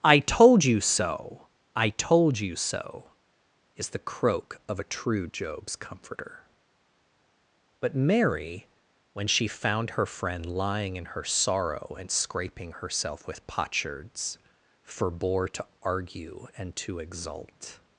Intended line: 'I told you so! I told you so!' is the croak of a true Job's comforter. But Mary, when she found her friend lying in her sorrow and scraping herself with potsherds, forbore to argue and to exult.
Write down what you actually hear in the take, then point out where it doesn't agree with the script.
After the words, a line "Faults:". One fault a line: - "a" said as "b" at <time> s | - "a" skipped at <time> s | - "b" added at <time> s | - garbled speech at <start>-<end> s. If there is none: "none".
'I told you so! I told you so!' is the croak of a true Job's comforter. But Mary, when she found her friend lying in her sorrow and scraping herself with potsherds, forbore to argue and to exult.
Faults:
none